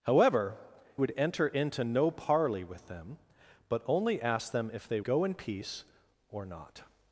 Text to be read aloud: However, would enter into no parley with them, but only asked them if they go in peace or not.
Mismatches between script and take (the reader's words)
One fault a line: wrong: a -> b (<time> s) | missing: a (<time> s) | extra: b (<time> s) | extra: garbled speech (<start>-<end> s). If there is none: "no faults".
no faults